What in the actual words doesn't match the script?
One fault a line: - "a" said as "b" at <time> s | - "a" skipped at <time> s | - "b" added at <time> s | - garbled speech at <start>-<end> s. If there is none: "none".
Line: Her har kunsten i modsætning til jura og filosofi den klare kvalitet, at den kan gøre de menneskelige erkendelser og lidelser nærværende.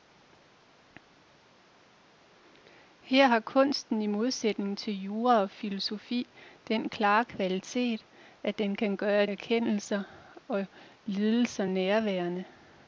- "de menneskelige" skipped at 9.2 s